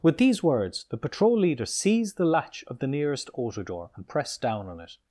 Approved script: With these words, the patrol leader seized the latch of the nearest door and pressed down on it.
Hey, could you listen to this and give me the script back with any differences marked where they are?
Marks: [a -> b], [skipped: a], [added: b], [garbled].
With these words, the patrol leader seized the latch of the nearest [added: auto] door and pressed down on it.